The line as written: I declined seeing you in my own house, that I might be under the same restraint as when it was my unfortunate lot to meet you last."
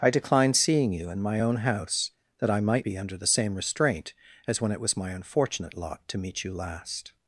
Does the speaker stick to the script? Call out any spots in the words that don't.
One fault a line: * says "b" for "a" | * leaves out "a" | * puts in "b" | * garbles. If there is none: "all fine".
all fine